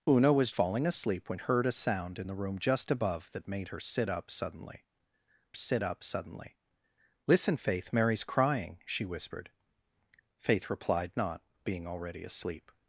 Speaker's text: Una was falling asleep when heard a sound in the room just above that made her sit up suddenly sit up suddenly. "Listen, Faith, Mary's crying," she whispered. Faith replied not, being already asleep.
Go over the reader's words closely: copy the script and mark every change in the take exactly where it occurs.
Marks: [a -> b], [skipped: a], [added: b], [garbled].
Una was falling asleep when heard a sound in the room just above that made her sit up suddenly sit up suddenly. "Listen, Faith, Mary's crying," she whispered. Faith replied not, being already asleep.